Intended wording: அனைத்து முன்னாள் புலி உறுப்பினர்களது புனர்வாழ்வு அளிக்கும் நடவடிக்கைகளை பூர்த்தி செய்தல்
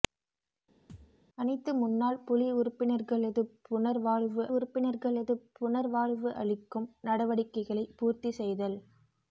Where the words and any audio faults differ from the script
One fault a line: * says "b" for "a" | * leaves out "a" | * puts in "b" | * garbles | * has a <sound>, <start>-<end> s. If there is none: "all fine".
* has a thud, 0.9-1.2 s
* puts in "உறுப்பினர்களது புனர்வாழ்வு"